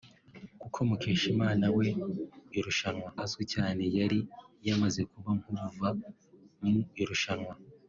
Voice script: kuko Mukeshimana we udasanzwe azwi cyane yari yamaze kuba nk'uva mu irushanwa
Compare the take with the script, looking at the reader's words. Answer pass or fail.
fail